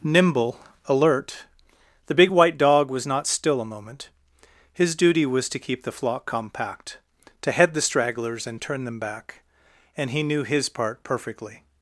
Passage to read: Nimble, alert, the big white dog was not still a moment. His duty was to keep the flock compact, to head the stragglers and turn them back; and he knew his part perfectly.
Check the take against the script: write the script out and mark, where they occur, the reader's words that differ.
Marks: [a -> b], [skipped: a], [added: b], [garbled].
Nimble, alert, the big white dog was not still a moment. His duty was to keep the flock compact, to head the stragglers and turn them back; and he knew his part perfectly.